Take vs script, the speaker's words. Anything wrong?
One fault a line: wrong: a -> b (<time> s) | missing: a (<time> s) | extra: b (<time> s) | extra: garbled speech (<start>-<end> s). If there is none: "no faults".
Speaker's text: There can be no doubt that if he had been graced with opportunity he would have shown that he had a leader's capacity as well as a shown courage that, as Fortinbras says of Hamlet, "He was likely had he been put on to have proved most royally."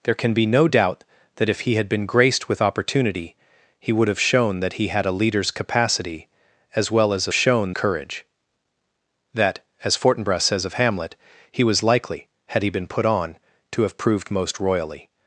no faults